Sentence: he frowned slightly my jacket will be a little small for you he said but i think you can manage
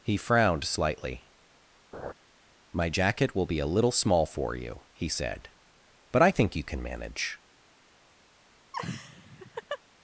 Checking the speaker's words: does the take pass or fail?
pass